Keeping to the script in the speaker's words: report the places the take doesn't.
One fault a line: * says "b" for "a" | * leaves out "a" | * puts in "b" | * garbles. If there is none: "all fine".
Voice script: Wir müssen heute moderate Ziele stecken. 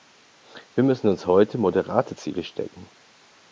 * puts in "uns"